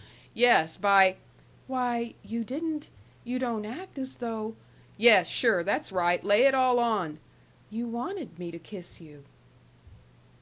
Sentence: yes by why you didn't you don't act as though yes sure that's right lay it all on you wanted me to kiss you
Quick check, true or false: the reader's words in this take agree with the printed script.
true